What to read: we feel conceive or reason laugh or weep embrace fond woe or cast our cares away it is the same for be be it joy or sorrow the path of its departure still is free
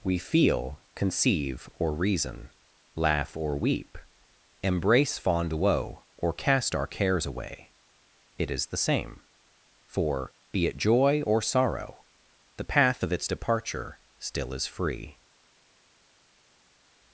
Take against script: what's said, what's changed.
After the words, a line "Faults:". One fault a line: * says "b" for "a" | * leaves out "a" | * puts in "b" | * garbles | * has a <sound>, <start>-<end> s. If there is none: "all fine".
we feel conceive or reason laugh or weep embrace fond woe or cast our cares away it is the same for be it joy or sorrow the path of its departure still is free
Faults:
* leaves out "be"